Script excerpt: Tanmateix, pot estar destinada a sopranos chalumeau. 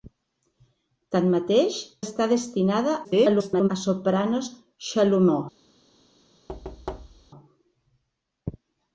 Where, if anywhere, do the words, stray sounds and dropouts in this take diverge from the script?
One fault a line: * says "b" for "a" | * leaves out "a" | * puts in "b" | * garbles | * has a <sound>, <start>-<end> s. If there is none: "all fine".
* leaves out "pot"
* garbles
* has a thud, 6.5-7.3 s